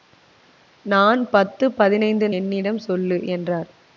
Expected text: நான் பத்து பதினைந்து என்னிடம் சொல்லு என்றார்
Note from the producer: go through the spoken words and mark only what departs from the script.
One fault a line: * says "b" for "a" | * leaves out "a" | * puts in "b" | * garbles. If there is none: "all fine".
all fine